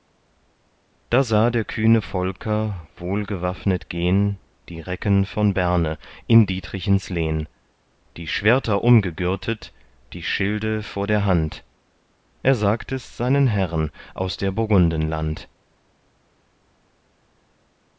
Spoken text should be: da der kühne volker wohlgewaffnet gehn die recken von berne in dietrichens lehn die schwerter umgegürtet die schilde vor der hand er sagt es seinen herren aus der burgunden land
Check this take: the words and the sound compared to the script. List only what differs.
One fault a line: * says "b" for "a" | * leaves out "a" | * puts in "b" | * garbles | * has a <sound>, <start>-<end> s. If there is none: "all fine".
* puts in "sah"